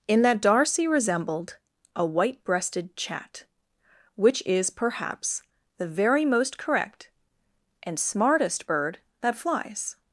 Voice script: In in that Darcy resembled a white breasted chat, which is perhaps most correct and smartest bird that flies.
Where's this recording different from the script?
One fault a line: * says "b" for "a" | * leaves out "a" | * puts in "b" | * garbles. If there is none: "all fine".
* leaves out "in"
* puts in "the very"